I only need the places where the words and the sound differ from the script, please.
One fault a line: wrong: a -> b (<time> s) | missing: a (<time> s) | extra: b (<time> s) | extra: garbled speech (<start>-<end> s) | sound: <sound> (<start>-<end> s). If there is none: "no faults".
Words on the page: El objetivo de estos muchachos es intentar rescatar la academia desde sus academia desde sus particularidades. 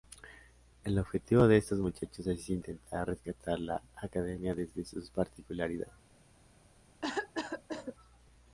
missing: academia desde sus (5.1 s)
sound: cough (7.0-7.9 s)